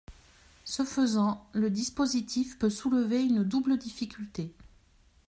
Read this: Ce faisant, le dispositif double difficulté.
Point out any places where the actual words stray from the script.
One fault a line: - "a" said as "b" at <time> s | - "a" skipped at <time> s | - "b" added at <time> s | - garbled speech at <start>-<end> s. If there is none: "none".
- "peut soulever une" added at 2.6 s